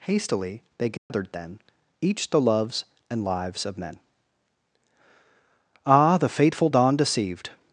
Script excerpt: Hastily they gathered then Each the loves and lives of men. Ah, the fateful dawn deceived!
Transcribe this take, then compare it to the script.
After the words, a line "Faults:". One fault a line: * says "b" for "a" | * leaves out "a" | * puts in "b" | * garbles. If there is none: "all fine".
Hastily they gathered then Each the loves and lives of men. Ah, the fateful dawn deceived!
Faults:
all fine